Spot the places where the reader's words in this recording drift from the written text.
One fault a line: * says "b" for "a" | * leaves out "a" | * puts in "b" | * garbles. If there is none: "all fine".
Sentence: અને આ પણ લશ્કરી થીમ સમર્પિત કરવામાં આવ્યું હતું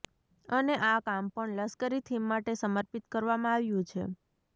* puts in "કામ"
* puts in "માટે"
* says "છે" for "હતું"